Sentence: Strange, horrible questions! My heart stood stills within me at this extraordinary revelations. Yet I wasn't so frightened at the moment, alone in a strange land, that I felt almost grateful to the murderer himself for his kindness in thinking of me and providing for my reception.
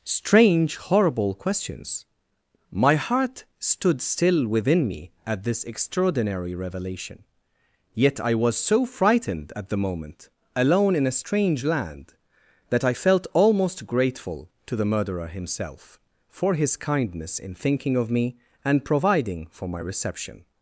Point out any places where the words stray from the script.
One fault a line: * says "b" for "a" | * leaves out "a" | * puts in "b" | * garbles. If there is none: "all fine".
* says "still" for "stills"
* says "revelation" for "revelations"
* says "was" for "wasn't"